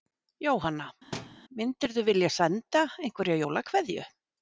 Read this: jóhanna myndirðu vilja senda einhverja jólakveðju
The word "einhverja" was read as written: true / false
true